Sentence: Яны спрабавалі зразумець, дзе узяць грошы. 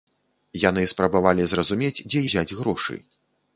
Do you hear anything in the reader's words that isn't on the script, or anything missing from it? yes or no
no